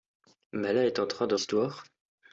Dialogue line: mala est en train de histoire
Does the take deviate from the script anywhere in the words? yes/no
no